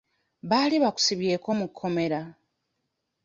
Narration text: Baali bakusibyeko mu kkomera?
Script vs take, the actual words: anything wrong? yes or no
no